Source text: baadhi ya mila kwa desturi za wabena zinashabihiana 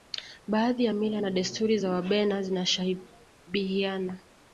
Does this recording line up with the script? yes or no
no